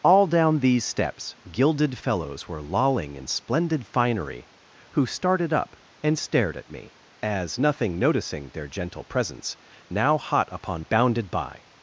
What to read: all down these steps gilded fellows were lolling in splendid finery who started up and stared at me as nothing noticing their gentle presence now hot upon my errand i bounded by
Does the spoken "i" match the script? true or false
false